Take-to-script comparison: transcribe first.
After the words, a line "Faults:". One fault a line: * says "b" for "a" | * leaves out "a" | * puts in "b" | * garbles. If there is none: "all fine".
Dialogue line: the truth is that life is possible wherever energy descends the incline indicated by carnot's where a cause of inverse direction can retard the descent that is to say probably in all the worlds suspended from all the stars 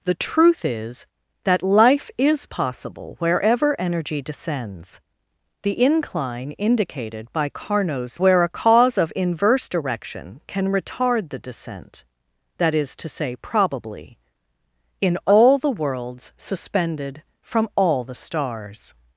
the truth is that life is possible wherever energy descends the incline indicated by carnot's where a cause of inverse direction can retard the descent that is to say probably in all the worlds suspended from all the stars
Faults:
all fine